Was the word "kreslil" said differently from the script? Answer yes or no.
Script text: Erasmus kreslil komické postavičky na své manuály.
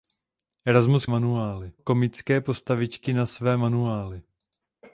yes